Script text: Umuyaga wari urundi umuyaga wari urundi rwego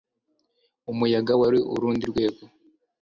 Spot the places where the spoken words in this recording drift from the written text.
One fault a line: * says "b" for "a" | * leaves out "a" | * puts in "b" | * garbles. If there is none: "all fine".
* leaves out "umuyaga wari urundi"